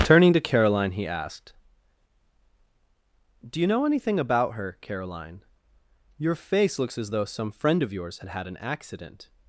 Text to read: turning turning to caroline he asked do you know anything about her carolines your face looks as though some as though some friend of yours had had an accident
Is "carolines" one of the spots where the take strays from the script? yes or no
yes